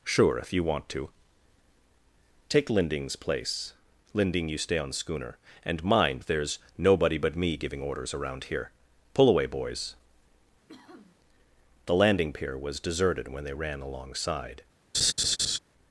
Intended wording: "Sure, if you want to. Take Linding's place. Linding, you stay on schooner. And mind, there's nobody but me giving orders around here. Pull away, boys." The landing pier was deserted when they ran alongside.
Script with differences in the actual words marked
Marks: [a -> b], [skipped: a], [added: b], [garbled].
"Sure, if you want to. Take Linding's place. Linding, you stay on schooner. And mind, there's nobody but me giving orders around here. Pull away, boys." The landing pier was deserted when they ran alongside.